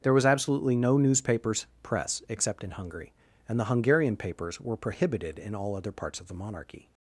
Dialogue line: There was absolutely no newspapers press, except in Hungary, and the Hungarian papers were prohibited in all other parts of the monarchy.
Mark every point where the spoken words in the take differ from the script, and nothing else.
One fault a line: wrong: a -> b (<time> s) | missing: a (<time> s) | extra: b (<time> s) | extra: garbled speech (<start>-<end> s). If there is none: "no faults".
no faults